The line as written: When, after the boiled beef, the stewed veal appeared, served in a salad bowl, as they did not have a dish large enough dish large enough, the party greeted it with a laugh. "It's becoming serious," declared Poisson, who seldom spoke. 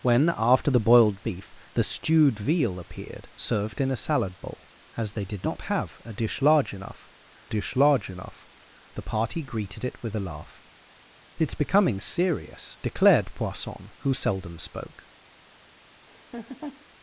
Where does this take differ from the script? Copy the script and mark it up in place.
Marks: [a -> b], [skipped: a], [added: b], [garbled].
When, after the boiled beef, the stewed veal appeared, served in a salad bowl, as they did not have a dish large enough dish large enough, the party greeted it with a laugh. "It's becoming serious," declared Poisson, who seldom spoke.